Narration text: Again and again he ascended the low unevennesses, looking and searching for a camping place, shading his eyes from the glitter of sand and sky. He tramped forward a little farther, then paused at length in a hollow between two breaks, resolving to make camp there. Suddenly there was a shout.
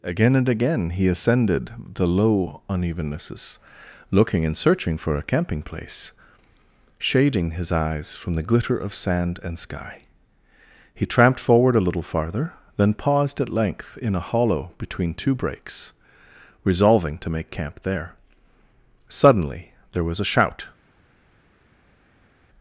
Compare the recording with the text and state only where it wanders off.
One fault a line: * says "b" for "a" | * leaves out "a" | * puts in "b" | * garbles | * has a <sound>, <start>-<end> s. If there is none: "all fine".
all fine